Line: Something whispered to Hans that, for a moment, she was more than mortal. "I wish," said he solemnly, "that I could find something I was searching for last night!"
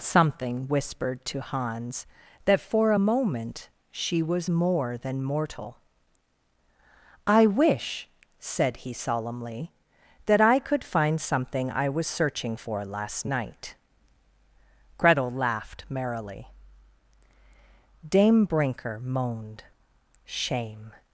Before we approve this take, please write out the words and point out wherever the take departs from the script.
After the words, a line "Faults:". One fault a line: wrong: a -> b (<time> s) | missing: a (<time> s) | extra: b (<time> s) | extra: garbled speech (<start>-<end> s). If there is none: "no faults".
Something whispered to Hans that, for a moment, she was more than mortal. "I wish," said he solemnly, "that I could find something I was searching for last night!" Gretel laughed merrily. Dame Brinker moaned. "Shame
Faults:
extra: Gretel laughed merrily Dame Brinker moaned Shame (15.0 s)